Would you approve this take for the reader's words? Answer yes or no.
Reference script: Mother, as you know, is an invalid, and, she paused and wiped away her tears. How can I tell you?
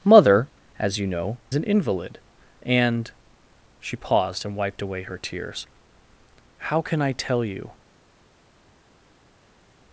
no